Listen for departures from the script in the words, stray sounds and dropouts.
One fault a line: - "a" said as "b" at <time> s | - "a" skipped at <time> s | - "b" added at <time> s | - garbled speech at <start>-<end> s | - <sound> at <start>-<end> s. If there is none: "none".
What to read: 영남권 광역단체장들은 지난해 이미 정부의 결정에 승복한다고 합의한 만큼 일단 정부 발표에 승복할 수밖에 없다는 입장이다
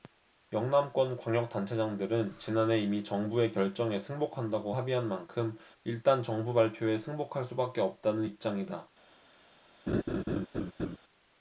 - laugh at 9.9-11.0 s